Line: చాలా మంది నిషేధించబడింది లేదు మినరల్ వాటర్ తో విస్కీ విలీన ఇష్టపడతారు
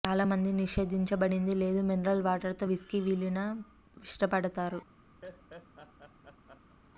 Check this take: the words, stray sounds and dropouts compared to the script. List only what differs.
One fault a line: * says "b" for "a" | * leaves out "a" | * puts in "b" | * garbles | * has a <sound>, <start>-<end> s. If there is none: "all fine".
* has a laugh, 5.2-6.8 s